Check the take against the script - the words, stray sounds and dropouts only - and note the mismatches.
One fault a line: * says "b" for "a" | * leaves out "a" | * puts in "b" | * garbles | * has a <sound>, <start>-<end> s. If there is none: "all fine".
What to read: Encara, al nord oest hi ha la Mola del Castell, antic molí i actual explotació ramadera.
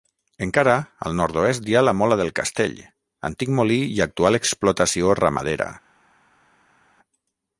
all fine